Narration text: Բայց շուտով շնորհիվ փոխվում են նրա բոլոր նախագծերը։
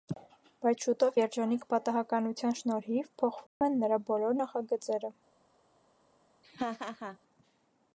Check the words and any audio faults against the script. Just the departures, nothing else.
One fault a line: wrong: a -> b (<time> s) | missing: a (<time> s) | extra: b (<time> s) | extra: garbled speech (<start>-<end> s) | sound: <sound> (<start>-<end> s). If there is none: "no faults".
extra: երջանիկ պատահականության (1.2 s)
sound: dropout (3.5-3.6 s)
sound: laugh (6.4-7.2 s)